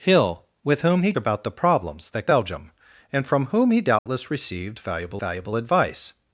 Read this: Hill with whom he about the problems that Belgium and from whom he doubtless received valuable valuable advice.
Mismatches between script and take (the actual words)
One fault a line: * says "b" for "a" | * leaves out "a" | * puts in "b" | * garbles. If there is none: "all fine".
all fine